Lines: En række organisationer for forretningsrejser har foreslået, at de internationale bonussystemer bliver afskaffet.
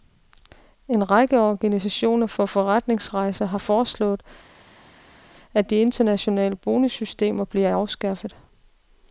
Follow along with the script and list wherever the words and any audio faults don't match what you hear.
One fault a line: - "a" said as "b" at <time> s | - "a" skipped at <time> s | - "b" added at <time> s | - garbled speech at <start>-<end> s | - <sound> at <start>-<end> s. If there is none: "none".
none